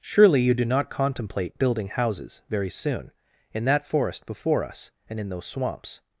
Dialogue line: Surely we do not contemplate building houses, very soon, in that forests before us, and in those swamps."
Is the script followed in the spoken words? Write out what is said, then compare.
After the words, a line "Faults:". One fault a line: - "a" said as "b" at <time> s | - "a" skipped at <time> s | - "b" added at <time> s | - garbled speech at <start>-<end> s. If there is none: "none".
Surely you do not contemplate building houses, very soon, in that forest before us, and in those swamps."
Faults:
- "we" said as "you" at 0.4 s
- "forests" said as "forest" at 3.9 s